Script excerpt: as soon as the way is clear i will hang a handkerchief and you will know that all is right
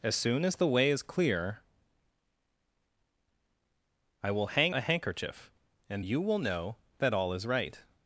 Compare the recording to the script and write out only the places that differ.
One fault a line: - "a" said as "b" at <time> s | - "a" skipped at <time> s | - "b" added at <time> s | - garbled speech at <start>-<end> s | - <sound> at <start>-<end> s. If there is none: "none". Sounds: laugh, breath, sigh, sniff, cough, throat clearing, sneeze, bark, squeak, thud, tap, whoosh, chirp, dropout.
none